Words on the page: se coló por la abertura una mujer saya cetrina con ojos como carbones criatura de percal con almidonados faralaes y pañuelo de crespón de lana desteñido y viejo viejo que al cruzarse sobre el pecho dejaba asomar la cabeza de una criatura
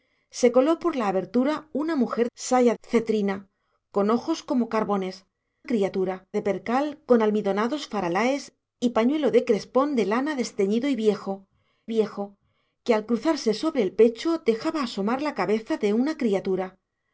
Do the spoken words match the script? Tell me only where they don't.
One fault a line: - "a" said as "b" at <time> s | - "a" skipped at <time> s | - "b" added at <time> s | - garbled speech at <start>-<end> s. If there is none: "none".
none